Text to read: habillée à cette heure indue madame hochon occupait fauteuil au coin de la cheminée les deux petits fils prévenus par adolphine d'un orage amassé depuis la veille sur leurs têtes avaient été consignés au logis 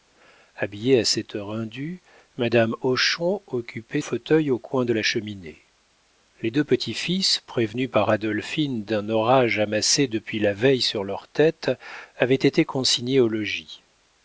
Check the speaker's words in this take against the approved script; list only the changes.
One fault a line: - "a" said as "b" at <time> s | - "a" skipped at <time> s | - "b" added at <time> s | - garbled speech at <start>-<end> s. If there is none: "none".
none